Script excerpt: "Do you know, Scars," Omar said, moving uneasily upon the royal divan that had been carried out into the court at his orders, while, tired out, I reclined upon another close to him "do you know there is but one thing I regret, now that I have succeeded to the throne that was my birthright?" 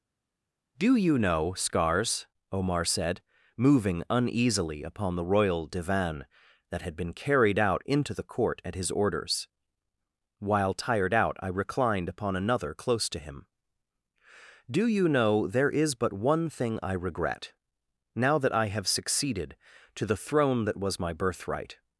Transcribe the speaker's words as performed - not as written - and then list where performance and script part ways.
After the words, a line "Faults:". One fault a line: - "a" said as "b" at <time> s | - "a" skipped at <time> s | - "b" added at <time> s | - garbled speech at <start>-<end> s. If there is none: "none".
"Do you know, Scars," Omar said, moving uneasily upon the royal divan that had been carried out into the court at his orders, while, tired out, I reclined upon another close to him "do you know there is but one thing I regret, now that I have succeeded to the throne that was my birthright?"
Faults:
none